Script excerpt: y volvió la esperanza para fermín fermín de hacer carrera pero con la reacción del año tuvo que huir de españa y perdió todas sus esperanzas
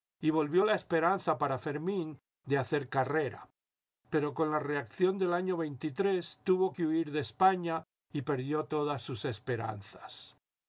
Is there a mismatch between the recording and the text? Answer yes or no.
yes